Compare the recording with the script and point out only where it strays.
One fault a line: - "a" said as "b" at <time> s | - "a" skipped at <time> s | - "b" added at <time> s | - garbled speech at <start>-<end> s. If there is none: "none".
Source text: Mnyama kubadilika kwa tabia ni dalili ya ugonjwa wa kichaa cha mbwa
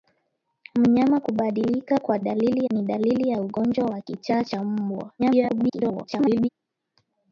- "tabia" said as "dalili" at 2.2 s
- garbled speech at 5.2-6.5 s